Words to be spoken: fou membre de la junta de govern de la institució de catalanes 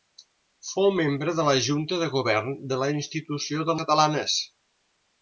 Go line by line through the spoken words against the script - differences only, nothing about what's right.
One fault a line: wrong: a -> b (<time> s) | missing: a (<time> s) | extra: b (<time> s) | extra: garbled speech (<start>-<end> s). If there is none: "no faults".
no faults